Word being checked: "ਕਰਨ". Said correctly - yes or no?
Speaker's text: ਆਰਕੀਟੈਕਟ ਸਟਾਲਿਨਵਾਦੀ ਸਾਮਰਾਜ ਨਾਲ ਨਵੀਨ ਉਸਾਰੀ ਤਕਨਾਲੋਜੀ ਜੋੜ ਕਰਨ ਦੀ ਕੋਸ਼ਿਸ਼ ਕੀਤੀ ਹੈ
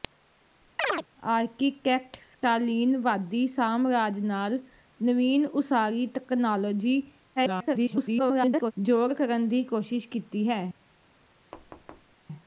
yes